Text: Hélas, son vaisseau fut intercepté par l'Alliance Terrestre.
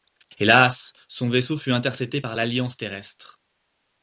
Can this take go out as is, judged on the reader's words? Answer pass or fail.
pass